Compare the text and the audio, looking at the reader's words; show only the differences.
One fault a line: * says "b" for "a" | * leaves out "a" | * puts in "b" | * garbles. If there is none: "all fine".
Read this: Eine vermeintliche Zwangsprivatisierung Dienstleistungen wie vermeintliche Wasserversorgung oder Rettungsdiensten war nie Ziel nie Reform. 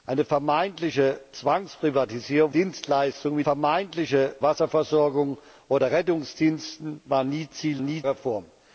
all fine